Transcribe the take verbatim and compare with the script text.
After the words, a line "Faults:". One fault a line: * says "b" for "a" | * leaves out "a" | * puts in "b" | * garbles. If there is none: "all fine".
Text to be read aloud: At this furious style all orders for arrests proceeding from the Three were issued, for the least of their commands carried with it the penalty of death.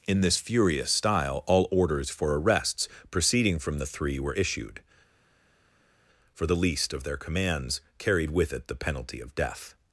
In this furious style all orders for arrests proceeding from the Three were issued, for the least of their commands carried with it the penalty of death.
Faults:
* says "In" for "At"